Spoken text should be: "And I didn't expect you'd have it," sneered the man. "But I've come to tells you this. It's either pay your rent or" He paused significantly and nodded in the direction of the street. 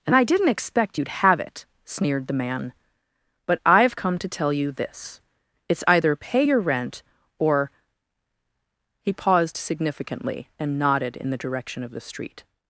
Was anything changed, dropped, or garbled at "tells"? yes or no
yes